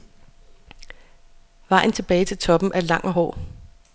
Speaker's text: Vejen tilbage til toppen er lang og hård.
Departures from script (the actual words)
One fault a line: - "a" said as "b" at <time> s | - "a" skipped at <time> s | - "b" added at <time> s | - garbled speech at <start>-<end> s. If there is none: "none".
none